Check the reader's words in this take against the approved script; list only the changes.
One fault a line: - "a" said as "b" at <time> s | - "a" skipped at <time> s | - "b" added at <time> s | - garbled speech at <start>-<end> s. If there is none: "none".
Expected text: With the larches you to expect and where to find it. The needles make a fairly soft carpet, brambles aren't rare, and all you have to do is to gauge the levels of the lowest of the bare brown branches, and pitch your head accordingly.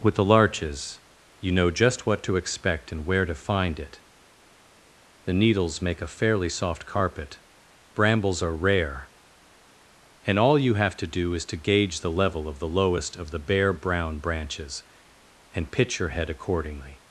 - "know just what" added at 1.5 s
- "aren't" said as "are" at 8.4 s
- "levels" said as "level" at 12.1 s